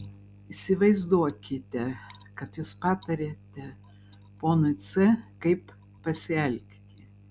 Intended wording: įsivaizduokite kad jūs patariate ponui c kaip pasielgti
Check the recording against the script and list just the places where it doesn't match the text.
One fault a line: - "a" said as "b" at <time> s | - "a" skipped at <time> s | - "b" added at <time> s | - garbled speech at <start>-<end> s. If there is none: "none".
none